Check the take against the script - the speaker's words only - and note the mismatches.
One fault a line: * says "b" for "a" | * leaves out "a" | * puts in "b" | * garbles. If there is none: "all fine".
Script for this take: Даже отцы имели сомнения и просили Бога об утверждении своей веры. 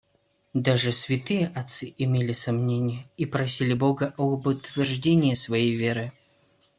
* puts in "святые"